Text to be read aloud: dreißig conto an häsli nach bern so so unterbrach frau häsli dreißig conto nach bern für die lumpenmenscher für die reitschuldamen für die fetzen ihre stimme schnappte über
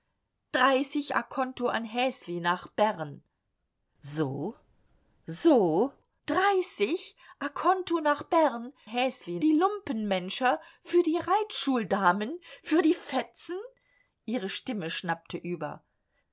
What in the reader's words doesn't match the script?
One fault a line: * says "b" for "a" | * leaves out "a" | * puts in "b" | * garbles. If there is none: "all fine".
* leaves out "unterbrach frau häsli"
* says "häsli" for "für"